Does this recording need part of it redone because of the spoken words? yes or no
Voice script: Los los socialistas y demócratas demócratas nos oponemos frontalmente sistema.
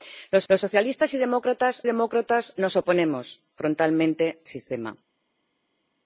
no